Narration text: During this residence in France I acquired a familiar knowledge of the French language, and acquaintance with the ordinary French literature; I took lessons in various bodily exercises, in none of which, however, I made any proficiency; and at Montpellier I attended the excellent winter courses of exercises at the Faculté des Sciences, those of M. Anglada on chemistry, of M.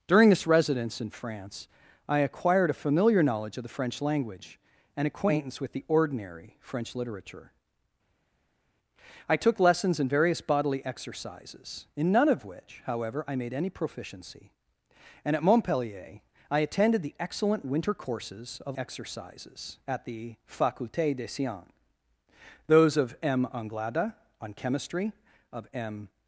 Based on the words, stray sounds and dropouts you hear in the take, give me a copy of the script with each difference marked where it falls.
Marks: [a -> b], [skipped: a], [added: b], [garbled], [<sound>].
During this residence in France I acquired a familiar knowledge of the French language, and acquaintance with the ordinary French literature; I took lessons in various bodily exercises, in none of which, however, I made any proficiency; and at Montpellier I attended the excellent winter courses of exercises at the Faculté des Sciences, those of M. Anglada on chemistry, of M.